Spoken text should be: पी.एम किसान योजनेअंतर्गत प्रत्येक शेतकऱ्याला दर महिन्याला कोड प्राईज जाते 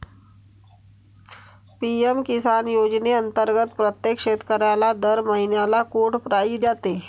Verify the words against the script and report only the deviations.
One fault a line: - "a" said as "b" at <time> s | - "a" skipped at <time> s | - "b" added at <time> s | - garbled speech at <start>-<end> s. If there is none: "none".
none